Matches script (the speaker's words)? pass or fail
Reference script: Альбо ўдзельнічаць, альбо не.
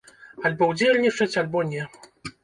pass